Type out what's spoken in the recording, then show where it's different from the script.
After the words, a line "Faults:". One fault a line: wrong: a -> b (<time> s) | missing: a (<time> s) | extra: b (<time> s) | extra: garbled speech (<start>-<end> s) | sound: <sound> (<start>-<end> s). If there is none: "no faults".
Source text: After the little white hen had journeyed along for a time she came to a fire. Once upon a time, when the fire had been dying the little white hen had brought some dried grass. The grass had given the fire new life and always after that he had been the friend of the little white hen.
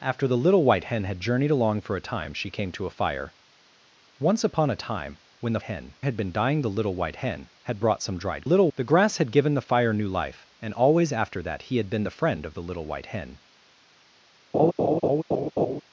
After the little white hen had journeyed along for a time she came to a fire. Once upon a time, when the hen had been dying the little white hen had brought some dried little. The grass had given the fire new life and always after that he had been the friend of the little white hen.
Faults:
wrong: fire -> hen (5.6 s)
wrong: grass -> little (8.4 s)
sound: laugh (14.5-15.8 s)